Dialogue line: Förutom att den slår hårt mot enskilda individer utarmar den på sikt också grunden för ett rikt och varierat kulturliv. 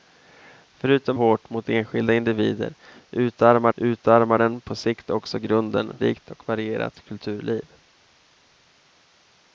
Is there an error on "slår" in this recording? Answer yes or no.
yes